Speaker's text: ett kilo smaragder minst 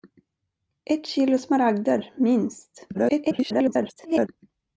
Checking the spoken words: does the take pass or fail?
fail